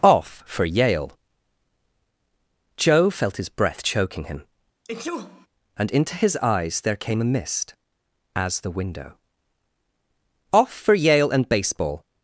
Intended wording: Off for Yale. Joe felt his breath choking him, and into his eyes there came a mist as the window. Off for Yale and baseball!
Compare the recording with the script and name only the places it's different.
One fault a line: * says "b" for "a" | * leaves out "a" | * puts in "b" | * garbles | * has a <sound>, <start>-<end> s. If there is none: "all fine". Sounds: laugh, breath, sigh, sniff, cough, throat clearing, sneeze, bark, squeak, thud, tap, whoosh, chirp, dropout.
* has a sneeze, 4.8-5.5 s